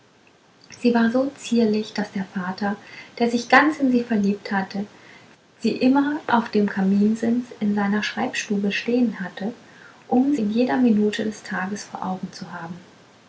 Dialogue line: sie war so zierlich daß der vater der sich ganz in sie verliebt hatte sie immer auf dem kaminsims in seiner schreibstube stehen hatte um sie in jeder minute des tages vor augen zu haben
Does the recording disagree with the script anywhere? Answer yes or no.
yes